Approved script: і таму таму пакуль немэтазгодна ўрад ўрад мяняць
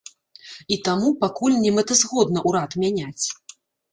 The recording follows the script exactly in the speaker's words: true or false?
false